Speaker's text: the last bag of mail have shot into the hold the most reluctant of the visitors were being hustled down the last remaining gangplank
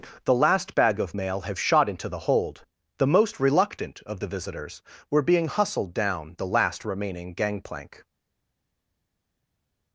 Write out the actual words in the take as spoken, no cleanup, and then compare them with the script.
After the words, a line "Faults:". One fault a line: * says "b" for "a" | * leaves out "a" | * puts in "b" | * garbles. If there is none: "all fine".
the last bag of mail have shot into the hold the most reluctant of the visitors were being hustled down the last remaining gangplank
Faults:
all fine